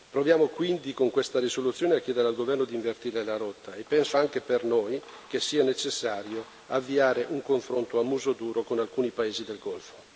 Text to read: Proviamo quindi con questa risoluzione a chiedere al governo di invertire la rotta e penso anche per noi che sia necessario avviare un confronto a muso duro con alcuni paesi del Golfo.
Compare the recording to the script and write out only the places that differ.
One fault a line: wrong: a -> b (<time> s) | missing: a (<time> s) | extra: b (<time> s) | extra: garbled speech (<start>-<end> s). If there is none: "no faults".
no faults